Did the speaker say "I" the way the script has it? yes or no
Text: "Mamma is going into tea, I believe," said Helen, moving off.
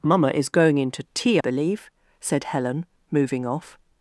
no